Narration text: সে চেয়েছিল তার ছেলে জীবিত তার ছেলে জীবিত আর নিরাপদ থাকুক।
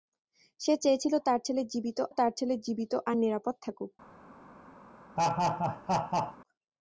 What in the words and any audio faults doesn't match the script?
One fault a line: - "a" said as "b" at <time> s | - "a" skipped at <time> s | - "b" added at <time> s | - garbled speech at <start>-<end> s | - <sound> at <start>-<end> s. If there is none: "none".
- laugh at 5.2-6.4 s